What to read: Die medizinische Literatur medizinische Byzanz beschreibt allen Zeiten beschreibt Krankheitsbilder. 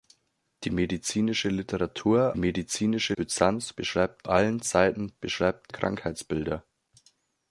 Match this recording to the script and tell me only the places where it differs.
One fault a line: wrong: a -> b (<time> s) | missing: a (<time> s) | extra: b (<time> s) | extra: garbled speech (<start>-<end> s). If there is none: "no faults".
no faults